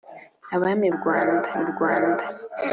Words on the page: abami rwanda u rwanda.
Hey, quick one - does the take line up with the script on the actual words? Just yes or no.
yes